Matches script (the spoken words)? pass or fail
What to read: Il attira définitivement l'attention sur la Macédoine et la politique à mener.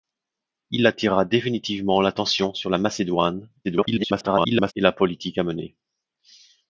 fail